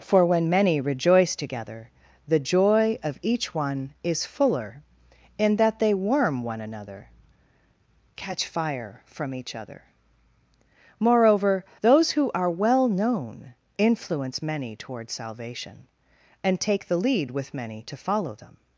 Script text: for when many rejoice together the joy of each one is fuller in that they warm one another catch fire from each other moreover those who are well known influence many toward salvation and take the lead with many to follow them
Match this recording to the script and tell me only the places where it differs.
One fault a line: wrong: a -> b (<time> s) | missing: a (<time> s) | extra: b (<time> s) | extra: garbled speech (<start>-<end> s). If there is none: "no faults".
no faults